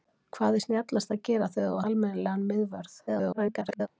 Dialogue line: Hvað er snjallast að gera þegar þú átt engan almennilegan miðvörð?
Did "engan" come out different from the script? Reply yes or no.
yes